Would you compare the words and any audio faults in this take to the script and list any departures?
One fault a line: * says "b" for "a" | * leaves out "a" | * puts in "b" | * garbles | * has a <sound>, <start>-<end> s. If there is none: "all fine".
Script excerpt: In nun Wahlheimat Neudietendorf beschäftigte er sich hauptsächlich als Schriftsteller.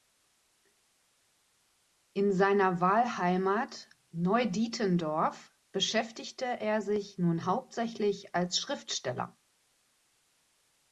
* says "seiner" for "nun"
* puts in "nun"